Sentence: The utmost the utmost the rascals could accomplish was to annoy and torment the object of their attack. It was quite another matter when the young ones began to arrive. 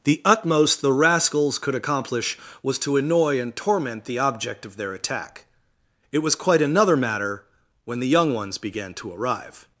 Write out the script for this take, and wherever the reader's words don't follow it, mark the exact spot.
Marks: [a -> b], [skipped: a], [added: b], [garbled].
The utmost the [skipped: utmost the] rascals could accomplish was to annoy and torment the object of their attack. It was quite another matter when the young ones began to arrive.